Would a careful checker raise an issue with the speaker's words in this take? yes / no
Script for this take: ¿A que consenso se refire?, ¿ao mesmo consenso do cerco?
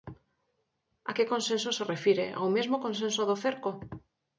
no